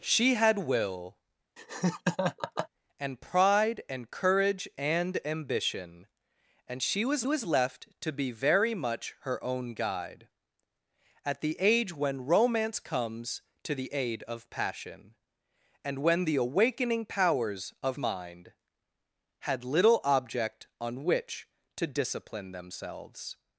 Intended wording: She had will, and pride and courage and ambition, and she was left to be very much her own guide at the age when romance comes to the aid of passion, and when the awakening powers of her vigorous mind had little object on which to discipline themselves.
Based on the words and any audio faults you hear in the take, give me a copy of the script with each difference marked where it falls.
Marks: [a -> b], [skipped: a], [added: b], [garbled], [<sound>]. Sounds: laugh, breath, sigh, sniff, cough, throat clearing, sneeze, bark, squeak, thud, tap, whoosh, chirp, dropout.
She had will, [laugh] and pride and courage and ambition, and she was [added: was] left to be very much her own guide at the age when romance comes to the aid of passion, and when the awakening powers of [skipped: her vigorous] mind had little object on which to discipline themselves.